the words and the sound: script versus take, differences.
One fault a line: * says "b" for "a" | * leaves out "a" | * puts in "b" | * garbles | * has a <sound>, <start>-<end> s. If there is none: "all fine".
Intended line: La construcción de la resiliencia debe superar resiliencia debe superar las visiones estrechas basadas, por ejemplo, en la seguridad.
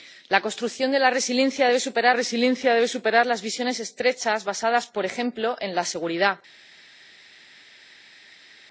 all fine